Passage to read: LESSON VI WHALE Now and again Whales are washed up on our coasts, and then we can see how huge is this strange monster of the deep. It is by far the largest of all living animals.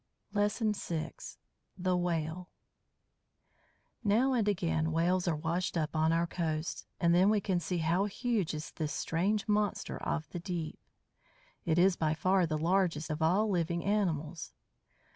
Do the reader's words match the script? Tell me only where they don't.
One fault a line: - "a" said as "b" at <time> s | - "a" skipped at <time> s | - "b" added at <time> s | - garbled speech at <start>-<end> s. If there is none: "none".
- "THE" added at 1.8 s